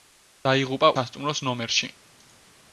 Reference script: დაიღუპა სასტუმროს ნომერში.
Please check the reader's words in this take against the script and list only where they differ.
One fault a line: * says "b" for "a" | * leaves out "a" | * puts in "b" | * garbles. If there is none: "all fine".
all fine